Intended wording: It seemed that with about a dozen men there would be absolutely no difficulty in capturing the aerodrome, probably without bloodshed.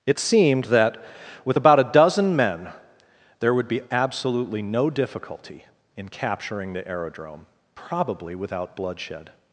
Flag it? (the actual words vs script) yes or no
no